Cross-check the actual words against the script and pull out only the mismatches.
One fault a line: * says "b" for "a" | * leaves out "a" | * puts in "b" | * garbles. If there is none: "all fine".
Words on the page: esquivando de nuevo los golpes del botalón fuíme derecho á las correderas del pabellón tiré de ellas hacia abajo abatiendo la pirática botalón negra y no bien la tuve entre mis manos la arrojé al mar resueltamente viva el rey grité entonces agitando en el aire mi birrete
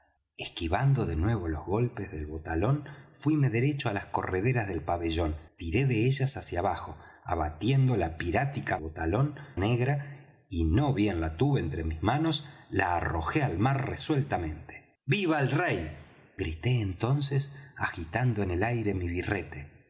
all fine